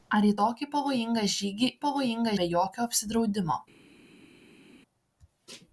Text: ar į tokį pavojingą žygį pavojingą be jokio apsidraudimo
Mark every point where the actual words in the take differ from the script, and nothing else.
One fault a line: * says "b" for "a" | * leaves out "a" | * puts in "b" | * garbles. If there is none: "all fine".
all fine